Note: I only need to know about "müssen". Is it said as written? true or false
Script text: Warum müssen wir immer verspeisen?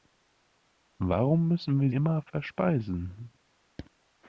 true